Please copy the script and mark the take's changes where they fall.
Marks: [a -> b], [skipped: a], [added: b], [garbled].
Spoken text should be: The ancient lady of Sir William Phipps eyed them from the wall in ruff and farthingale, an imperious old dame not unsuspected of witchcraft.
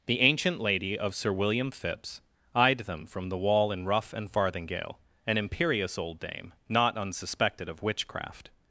The ancient lady of Sir William Phipps eyed them from the wall in ruff and farthingale, an imperious old dame not unsuspected of witchcraft.